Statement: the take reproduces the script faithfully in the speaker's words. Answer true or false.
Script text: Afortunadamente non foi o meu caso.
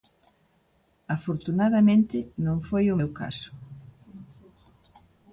true